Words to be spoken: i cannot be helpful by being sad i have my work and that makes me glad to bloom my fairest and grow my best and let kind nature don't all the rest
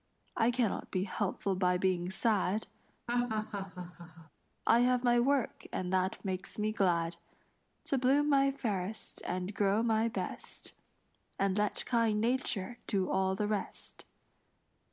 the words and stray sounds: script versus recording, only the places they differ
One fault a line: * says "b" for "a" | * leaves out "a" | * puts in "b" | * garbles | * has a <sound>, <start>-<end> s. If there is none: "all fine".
* has a laugh, 3.1-4.3 s
* says "do" for "don't"